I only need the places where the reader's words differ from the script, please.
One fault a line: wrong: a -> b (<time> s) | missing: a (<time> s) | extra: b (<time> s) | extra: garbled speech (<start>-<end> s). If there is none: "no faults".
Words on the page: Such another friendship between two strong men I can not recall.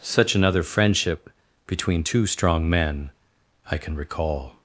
missing: not (4.0 s)